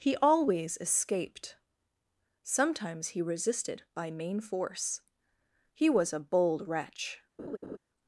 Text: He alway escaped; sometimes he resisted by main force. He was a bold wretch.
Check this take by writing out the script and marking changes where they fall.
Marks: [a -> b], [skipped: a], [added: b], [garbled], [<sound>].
He [alway -> always] escaped; sometimes he resisted by main force. He was a bold wretch. [laugh]